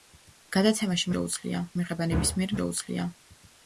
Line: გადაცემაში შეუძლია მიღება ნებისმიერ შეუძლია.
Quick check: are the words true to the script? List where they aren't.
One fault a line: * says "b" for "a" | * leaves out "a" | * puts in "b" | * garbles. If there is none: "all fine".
all fine